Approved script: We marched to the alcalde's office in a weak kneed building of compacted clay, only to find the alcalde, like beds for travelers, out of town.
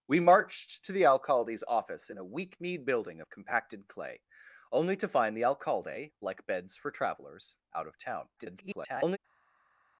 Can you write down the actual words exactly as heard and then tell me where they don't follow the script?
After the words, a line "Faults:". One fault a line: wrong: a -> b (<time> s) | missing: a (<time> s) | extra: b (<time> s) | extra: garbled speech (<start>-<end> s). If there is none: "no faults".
We marched to the alcalde's office in a weak kneed building of compacted clay, only to find the alcalde, like beds for travelers, out of town. [garbled]
Faults:
extra: garbled speech (8.4-9.2 s)